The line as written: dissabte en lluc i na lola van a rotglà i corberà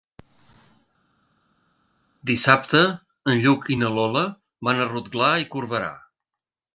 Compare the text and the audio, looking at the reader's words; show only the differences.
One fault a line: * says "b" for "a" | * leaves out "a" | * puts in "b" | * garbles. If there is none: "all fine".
all fine